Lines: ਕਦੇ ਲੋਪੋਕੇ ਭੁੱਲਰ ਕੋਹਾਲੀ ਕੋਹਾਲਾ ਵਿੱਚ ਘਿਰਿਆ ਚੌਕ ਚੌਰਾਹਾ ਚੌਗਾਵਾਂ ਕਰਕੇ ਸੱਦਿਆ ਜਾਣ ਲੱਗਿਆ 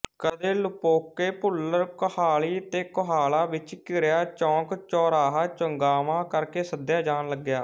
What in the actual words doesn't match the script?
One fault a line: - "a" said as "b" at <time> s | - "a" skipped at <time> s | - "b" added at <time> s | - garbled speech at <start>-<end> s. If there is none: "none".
- "ਤੇ" added at 2.7 s